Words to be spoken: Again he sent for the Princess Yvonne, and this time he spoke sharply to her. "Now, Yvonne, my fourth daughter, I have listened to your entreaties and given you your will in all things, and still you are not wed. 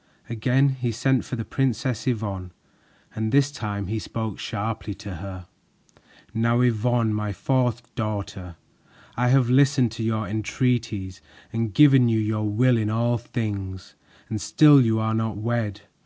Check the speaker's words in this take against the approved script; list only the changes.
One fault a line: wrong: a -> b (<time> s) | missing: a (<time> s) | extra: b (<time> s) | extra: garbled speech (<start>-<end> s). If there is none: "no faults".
no faults